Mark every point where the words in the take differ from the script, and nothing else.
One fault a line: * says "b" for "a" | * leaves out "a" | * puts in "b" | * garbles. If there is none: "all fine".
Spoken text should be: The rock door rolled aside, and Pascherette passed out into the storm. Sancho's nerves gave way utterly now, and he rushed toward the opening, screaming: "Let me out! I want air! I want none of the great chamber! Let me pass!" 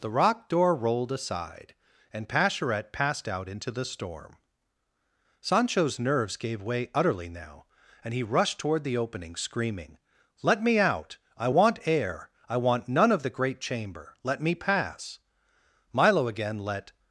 * puts in "Milo again let"